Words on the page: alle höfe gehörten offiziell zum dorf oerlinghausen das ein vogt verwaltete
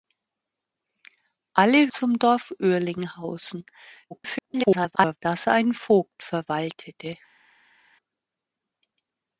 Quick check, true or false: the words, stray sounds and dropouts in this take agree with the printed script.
false